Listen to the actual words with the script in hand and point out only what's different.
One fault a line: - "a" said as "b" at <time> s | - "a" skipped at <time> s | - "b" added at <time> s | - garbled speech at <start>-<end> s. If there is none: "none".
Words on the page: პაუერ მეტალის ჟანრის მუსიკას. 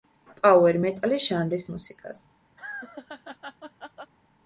none